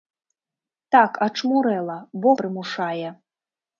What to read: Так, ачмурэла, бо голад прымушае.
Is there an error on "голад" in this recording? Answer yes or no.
yes